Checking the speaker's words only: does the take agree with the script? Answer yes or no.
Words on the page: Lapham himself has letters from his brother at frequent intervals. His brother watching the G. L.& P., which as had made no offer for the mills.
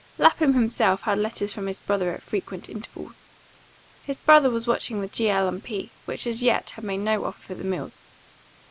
no